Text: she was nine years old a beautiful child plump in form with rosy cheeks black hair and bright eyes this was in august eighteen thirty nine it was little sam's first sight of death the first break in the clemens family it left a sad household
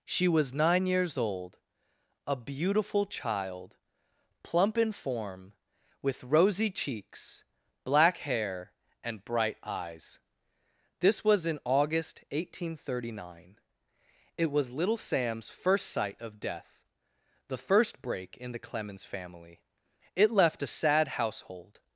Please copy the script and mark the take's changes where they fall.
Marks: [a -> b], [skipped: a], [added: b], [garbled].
she was nine years old a beautiful child plump in form with rosy cheeks black hair and bright eyes this was in august eighteen thirty nine it was little sam's first sight of death the first break in the clemens family it left a sad household